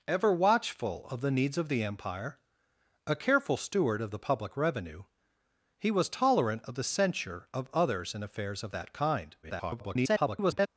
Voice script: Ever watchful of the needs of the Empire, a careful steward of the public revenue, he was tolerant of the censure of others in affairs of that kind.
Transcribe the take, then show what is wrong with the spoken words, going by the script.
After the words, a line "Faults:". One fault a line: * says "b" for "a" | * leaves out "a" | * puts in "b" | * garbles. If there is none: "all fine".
Ever watchful of the needs of the Empire, a careful steward of the public revenue, he was tolerant of the censure of others in affairs of that kind. [garbled]
Faults:
* garbles